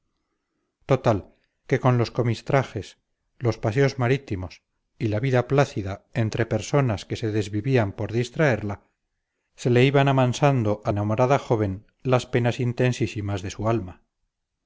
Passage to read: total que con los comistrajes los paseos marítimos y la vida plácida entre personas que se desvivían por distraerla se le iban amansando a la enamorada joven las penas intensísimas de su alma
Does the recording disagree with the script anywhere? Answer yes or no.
yes